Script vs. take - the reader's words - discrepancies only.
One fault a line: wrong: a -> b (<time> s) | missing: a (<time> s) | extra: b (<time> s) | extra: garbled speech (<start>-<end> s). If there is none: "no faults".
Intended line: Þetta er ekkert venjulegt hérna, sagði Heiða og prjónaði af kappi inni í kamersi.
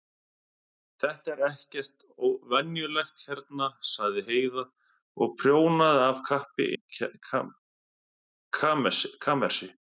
missing: inni (6.7 s)